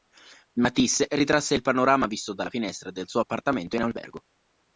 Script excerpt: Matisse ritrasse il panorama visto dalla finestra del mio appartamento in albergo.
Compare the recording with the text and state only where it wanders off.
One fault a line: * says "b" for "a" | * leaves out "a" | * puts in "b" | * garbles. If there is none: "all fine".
* says "suo" for "mio"